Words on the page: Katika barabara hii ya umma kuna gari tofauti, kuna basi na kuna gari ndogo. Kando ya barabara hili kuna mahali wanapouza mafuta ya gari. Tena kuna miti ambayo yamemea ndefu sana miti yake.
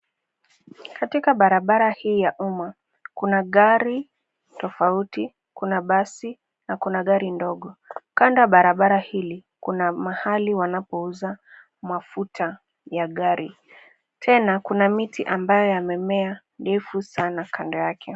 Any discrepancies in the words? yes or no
yes